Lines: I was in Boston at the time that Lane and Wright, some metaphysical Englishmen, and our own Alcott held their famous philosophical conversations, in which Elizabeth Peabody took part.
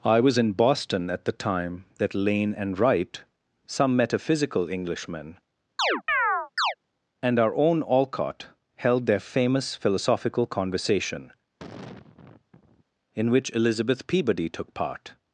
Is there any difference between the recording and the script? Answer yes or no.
yes